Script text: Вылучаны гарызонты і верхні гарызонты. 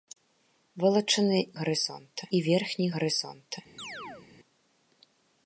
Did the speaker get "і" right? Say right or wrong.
right